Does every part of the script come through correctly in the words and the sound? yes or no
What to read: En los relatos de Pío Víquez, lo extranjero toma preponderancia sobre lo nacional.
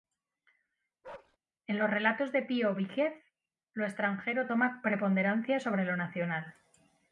no